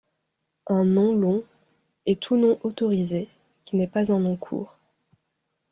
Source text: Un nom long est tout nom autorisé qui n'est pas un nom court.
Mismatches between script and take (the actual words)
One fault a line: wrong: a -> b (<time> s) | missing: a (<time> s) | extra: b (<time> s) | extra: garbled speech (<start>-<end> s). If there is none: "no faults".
no faults